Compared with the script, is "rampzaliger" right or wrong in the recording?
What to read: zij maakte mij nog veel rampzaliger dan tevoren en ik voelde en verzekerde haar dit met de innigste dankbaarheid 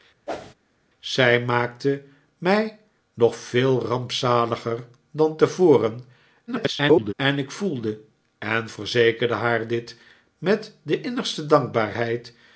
right